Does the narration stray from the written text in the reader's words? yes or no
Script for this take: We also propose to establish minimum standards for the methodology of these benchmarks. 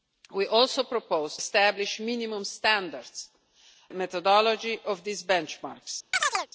yes